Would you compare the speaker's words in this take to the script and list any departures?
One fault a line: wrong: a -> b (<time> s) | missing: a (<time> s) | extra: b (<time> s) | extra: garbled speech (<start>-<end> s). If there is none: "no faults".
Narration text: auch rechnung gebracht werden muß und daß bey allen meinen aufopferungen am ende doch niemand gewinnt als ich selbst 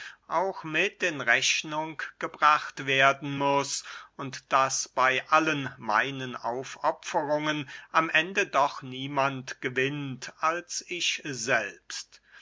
extra: mit in (0.6 s)